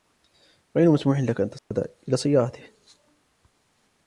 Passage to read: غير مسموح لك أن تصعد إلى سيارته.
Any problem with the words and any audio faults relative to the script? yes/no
yes